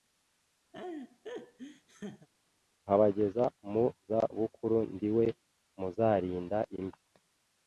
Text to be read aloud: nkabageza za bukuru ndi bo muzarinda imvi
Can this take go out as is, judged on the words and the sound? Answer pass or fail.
fail